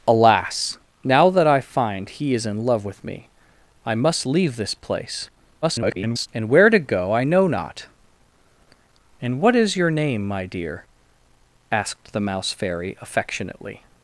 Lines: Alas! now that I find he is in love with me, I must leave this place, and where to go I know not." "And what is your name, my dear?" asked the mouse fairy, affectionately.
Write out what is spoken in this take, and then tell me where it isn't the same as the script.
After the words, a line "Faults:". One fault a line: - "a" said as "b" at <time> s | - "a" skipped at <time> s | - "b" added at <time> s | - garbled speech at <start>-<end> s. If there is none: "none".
Alas! now that I find he is in love with me, I must leave this place, [garbled] and where to go I know not." "And what is your name, my dear?" asked the mouse fairy, affectionately.
Faults:
- garbled speech at 5.6-6.3 s